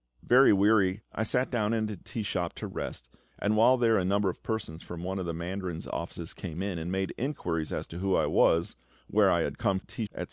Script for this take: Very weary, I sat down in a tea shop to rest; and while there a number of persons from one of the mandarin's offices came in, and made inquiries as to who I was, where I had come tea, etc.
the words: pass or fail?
pass